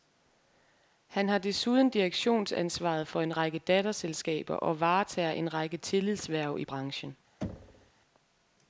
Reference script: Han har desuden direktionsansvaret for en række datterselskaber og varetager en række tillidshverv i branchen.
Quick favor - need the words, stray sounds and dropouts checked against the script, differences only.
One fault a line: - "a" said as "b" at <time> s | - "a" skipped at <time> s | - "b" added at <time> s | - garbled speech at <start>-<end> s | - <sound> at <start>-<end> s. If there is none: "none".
- thud at 7.4-7.9 s